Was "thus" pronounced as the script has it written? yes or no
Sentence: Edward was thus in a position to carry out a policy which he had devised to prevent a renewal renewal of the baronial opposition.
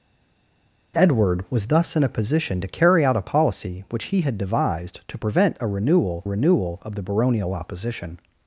yes